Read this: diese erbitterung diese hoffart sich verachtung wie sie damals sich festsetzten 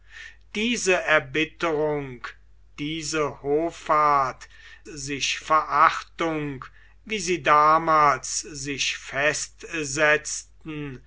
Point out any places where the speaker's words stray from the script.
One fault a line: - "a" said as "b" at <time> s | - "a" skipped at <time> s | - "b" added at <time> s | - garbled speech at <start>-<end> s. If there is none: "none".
none